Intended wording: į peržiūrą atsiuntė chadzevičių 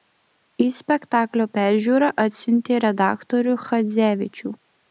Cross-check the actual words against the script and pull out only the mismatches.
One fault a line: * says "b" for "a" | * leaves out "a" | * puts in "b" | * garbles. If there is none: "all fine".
* puts in "spektaklio"
* puts in "redaktorių"